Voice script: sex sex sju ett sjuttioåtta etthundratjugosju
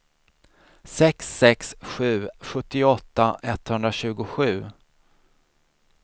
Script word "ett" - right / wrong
wrong